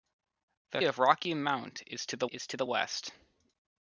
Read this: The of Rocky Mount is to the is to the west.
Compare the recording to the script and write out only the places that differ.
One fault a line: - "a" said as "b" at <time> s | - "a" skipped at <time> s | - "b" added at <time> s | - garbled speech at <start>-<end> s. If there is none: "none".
none